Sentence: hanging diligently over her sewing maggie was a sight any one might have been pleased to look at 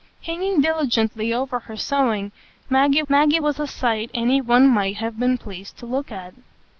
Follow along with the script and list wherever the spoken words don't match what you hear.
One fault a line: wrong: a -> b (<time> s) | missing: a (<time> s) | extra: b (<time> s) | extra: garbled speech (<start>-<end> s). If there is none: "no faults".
extra: maggie (3.1 s)